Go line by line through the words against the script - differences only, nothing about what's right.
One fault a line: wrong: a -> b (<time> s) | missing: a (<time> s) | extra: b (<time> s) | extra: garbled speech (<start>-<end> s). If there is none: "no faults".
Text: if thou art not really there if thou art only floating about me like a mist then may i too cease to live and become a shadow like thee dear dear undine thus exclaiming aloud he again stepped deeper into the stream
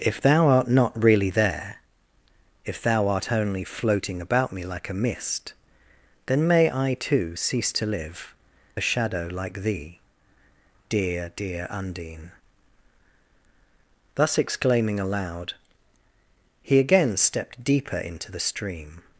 missing: and become (8.3 s)